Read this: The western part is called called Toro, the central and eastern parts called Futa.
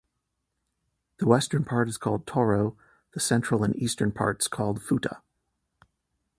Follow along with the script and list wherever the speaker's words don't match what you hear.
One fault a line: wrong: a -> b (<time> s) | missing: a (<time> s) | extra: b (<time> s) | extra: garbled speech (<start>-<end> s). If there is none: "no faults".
missing: called (2.3 s)